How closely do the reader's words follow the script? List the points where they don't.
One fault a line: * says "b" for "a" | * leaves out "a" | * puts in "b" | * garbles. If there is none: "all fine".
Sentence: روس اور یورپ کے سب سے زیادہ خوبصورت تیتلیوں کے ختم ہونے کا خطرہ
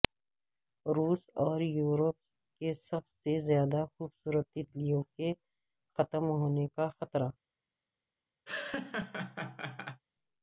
all fine